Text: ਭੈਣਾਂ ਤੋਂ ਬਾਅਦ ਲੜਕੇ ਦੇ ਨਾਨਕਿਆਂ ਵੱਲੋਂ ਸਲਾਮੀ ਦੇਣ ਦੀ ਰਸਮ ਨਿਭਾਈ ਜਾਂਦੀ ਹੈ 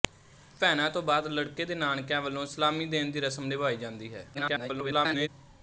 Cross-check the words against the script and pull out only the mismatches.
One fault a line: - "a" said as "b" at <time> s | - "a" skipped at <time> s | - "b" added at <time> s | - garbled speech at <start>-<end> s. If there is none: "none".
- garbled speech at 4.3-5.3 s